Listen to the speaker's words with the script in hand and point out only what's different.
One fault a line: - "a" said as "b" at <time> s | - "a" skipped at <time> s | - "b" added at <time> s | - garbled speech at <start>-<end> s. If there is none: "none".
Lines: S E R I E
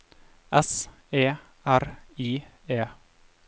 none